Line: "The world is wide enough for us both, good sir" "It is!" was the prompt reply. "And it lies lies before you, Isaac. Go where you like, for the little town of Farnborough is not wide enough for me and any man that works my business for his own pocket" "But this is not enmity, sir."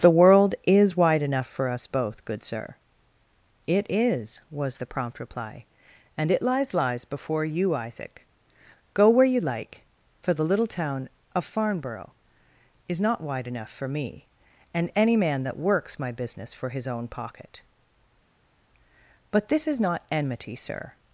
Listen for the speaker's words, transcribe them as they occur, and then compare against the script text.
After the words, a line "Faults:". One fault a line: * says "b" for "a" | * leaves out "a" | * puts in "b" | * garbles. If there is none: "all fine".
"The world is wide enough for us both, good sir" "It is!" was the prompt reply. "And it lies lies before you, Isaac. Go where you like, for the little town of Farnborough is not wide enough for me and any man that works my business for his own pocket" "But this is not enmity, sir."
Faults:
all fine